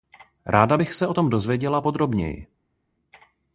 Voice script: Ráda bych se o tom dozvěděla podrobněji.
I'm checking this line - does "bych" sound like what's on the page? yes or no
yes